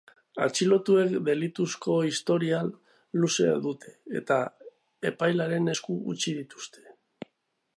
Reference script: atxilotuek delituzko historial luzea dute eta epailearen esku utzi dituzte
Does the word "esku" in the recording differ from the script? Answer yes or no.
no